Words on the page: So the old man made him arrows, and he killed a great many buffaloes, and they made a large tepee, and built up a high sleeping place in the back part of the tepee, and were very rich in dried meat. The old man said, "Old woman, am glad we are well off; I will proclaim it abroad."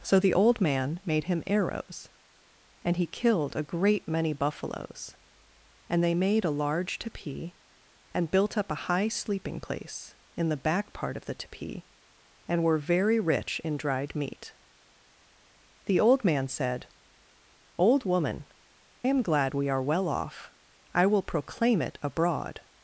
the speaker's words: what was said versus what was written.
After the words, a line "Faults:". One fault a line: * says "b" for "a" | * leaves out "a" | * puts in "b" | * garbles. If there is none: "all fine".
So the old man made him arrows, and he killed a great many buffaloes, and they made a large tepee, and built up a high sleeping place in the back part of the tepee, and were very rich in dried meat. The old man said, "Old woman, am glad we are well off; I will proclaim it abroad."
Faults:
all fine